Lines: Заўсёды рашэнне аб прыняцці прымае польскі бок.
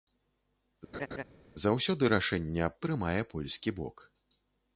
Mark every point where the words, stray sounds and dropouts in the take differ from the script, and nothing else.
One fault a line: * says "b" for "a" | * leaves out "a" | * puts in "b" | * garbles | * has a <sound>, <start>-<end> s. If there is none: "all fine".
* has a laugh, 0.9-1.2 s
* leaves out "прыняцці"